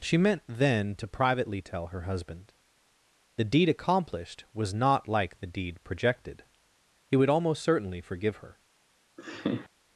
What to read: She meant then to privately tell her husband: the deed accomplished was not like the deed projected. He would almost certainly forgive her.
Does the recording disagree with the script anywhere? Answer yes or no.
no